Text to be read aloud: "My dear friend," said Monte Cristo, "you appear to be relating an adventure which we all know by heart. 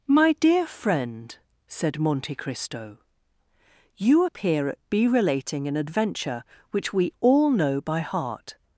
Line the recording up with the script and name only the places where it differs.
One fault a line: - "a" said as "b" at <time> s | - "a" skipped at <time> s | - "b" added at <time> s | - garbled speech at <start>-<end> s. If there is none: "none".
- "to" said as "at" at 4.7 s